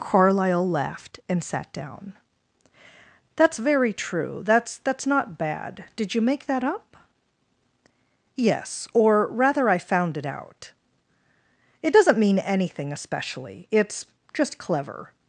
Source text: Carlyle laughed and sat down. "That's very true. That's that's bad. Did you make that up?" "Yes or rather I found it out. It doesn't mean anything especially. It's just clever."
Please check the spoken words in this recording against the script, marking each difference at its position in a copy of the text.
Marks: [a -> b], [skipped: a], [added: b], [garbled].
Carlyle laughed and sat down. "That's very true. That's that's [added: not] bad. Did you make that up?" "Yes or rather I found it out. It doesn't mean anything especially. It's just clever."